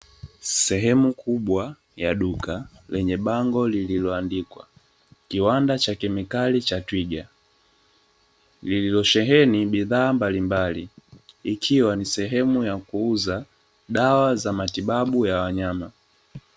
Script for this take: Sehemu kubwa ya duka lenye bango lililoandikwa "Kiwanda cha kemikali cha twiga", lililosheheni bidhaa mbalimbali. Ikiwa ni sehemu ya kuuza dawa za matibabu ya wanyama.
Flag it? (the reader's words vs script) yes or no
no